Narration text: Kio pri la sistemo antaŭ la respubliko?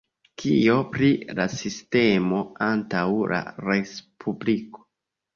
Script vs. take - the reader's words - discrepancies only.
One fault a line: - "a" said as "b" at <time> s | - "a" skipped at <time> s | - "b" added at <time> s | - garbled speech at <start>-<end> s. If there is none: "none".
none